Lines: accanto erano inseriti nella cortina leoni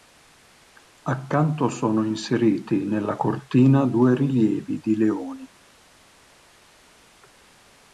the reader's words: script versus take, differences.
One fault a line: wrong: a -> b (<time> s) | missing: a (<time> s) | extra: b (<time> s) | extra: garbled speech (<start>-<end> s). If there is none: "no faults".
wrong: erano -> sono (1.7 s)
extra: due rilievi di (3.9 s)